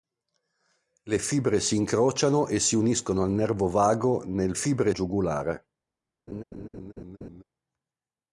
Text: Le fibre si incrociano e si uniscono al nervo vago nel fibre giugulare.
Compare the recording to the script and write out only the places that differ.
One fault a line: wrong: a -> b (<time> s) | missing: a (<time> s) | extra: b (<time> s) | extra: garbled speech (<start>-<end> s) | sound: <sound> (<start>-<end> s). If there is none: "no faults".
sound: laugh (6.3-7.4 s)